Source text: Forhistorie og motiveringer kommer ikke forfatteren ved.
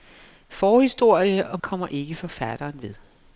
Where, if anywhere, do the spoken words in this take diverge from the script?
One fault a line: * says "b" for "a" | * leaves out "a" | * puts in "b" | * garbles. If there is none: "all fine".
* leaves out "motiveringer"